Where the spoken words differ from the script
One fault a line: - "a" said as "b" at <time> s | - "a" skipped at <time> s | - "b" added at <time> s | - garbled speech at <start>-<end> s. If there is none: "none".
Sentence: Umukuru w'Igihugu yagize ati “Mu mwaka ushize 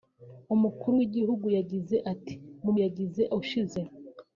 - "mwaka" said as "yagize" at 2.8 s